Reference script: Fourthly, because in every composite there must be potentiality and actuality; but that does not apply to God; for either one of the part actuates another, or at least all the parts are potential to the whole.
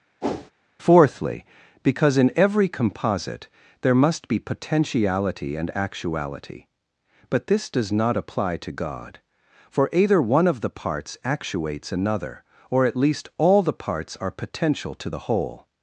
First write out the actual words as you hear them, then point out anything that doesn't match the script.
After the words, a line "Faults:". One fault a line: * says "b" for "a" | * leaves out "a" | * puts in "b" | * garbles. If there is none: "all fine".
Fourthly, because in every composite there must be potentiality and actuality; but this does not apply to God; for either one of the parts actuates another, or at least all the parts are potential to the whole.
Faults:
* says "this" for "that"
* says "parts" for "part"